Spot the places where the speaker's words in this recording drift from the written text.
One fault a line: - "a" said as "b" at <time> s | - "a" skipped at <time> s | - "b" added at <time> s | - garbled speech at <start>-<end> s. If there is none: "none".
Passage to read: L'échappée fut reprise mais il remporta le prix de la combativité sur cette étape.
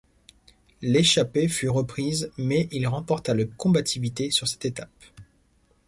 - "prix de la" skipped at 3.5 s